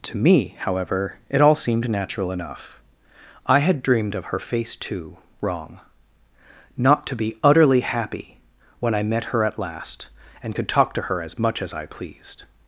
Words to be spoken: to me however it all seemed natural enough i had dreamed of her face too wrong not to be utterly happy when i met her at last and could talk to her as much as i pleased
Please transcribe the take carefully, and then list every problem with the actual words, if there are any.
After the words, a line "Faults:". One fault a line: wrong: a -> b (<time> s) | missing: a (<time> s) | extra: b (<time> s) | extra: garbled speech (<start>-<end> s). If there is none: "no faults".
to me however it all seemed natural enough i had dreamed of her face too wrong not to be utterly happy when i met her at last and could talk to her as much as i pleased
Faults:
no faults